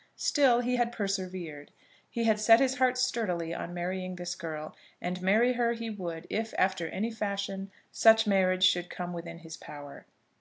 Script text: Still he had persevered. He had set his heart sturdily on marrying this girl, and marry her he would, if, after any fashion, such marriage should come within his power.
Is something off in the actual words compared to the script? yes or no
no